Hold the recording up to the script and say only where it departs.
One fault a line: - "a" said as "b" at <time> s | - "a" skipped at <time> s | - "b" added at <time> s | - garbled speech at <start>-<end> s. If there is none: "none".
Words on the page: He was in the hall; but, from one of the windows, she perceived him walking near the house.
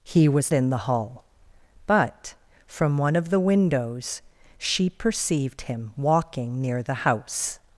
none